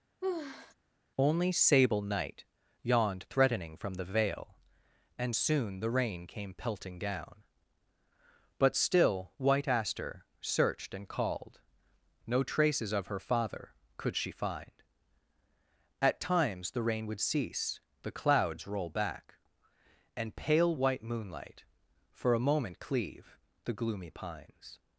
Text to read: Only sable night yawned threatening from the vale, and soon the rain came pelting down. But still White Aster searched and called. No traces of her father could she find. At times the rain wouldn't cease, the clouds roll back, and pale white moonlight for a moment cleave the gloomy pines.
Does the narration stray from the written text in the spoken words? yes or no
yes